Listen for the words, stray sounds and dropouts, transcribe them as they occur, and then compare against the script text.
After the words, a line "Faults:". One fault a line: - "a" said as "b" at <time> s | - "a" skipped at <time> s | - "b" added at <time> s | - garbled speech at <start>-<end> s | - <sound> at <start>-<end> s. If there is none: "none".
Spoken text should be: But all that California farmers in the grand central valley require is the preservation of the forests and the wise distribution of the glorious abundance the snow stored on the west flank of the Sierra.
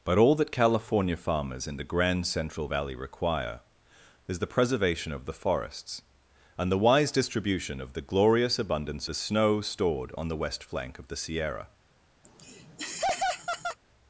But all that California farmers in the grand central valley require is the preservation of the forests and the wise distribution of the glorious abundance the snow stored on the west flank of the Sierra.
Faults:
- laugh at 12.2-13.8 s